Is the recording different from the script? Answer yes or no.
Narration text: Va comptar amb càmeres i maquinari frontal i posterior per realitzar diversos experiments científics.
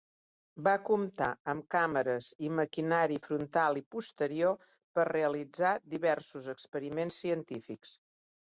no